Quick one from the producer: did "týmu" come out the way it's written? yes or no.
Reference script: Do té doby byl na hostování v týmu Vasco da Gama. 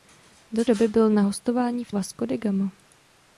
no